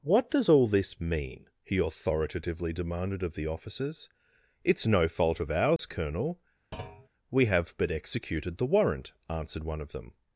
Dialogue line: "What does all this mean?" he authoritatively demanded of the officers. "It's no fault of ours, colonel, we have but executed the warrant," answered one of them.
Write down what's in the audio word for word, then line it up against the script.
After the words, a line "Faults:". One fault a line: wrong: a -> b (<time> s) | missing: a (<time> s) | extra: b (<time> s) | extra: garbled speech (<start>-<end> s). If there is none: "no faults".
"What does all this mean?" he authoritatively demanded of the officers. "It's no fault of ours, colonel, we have but executed the warrant," answered one of them.
Faults:
no faults